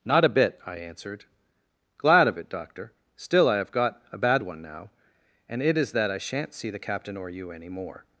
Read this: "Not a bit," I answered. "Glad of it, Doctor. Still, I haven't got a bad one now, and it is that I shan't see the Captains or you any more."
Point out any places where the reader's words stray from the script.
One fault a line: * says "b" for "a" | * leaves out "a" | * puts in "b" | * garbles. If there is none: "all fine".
* says "have" for "haven't"
* says "Captain" for "Captains"